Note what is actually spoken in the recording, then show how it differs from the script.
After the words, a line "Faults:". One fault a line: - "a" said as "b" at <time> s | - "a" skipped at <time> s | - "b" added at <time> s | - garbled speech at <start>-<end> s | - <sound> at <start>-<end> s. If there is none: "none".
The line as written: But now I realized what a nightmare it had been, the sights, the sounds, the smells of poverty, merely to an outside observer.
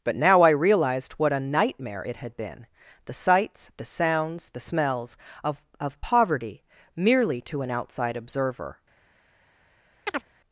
But now I realized what a nightmare it had been, the sights, the sounds, the smells of of poverty, merely to an outside observer.
Faults:
- "of" added at 5.8 s
- chirp at 10.1-10.3 s